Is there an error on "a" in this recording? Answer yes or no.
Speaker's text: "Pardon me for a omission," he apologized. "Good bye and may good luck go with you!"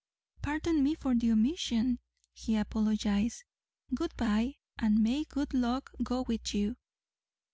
yes